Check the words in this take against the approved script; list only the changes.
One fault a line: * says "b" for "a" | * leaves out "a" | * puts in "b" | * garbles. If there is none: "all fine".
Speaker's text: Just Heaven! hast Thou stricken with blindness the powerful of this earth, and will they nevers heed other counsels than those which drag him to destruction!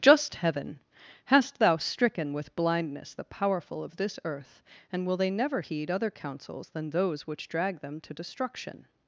* says "never" for "nevers"
* says "them" for "him"